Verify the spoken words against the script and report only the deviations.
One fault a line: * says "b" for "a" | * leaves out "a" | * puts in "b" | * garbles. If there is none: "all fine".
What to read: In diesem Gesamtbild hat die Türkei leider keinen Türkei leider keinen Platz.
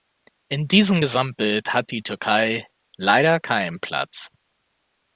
* leaves out "Türkei leider keinen"